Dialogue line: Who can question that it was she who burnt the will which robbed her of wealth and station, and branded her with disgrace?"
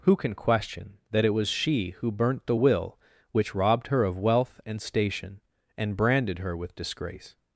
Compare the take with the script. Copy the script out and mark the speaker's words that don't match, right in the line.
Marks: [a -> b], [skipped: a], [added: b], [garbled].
Who can question that it was she who burnt the will which robbed her of wealth and station, and branded her with disgrace?"